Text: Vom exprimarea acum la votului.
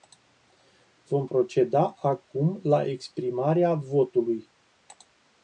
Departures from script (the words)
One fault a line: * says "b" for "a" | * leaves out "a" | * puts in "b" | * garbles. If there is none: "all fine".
* says "proceda" for "exprimarea"
* puts in "exprimarea"